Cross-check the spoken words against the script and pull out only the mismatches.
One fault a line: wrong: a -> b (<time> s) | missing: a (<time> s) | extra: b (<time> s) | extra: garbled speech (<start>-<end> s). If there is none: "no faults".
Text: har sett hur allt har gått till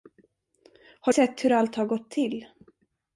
no faults